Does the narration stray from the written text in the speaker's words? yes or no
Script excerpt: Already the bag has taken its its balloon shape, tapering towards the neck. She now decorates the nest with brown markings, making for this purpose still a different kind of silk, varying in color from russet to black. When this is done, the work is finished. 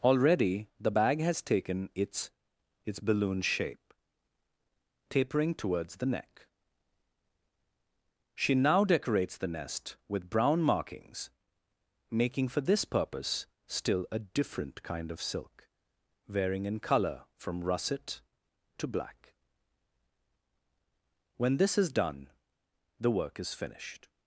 no